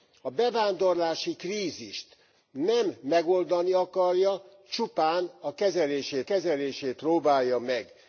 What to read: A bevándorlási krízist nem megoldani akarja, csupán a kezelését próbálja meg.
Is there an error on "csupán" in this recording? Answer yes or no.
no